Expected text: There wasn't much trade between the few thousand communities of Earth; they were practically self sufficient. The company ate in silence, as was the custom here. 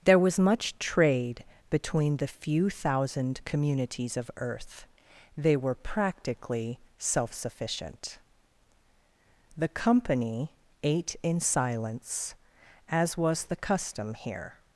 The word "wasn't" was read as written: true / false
false